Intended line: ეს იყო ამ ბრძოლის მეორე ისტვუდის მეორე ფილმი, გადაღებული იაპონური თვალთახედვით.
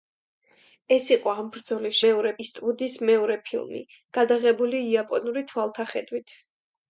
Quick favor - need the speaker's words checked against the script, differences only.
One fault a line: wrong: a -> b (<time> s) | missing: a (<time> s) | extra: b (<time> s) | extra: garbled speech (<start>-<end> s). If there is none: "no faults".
no faults